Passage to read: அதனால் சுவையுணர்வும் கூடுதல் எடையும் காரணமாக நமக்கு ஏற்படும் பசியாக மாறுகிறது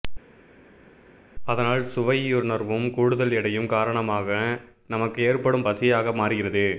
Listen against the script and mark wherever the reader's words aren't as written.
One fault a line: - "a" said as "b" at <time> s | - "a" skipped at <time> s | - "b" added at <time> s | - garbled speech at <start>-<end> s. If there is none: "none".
none